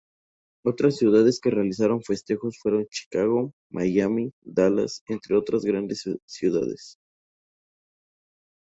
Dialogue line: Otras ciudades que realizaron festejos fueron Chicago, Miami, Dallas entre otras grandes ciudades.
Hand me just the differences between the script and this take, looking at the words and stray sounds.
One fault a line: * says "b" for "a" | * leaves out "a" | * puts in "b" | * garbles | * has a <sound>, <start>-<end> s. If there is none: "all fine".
all fine